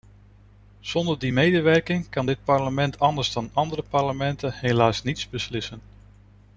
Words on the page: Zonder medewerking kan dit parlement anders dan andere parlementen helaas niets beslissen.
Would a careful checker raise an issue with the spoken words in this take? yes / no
yes